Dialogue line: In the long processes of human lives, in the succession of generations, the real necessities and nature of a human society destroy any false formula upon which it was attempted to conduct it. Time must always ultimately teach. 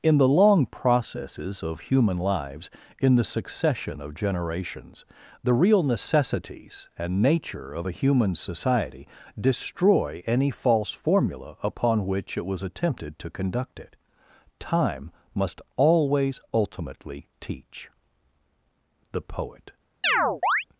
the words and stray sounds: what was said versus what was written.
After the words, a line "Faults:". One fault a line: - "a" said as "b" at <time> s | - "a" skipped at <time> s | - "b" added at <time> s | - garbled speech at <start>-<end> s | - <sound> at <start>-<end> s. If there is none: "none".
In the long processes of human lives, in the succession of generations, the real necessities and nature of a human society destroy any false formula upon which it was attempted to conduct it. Time must always ultimately teach. The poet
Faults:
- "The poet" added at 19.1 s
- chirp at 20.0-20.6 s